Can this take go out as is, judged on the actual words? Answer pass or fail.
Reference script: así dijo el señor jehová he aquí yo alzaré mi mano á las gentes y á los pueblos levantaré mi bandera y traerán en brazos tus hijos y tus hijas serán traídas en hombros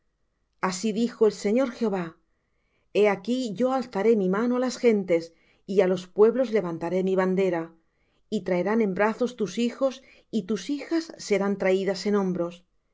pass